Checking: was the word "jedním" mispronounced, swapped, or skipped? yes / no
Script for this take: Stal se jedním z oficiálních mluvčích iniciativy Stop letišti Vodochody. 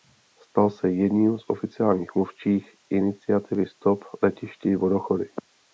no